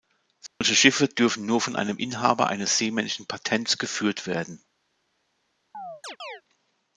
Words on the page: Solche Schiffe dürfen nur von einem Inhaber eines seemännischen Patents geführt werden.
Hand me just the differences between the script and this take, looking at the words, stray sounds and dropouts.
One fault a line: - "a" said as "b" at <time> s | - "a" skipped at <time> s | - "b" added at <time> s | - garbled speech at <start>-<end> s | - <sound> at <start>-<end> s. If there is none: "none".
- dropout at 0.5-0.6 s
- chirp at 5.7-6.4 s